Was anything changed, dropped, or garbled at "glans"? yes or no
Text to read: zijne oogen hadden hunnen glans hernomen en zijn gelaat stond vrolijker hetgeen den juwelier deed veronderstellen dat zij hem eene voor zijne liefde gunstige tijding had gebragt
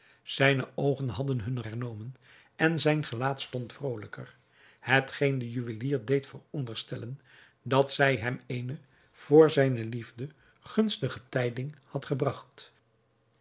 yes